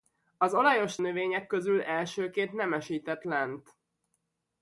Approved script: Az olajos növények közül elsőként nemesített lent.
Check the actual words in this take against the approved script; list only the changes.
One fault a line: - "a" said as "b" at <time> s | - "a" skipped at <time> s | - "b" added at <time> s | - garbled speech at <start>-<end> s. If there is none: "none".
none